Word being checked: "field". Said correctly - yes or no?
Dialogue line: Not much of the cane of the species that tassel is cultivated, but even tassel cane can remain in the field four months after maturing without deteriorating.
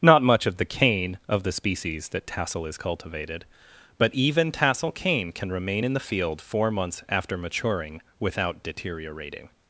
yes